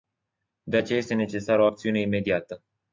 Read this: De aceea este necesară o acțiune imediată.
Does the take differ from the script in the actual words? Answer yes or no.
no